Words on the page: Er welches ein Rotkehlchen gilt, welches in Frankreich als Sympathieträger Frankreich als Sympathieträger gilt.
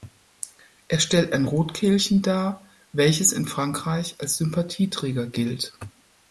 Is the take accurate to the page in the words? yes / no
no